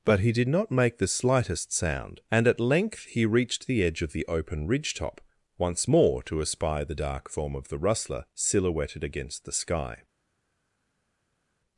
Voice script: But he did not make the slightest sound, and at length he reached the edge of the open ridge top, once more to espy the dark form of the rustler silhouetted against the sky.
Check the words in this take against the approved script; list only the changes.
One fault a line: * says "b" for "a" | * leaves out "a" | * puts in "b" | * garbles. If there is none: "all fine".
all fine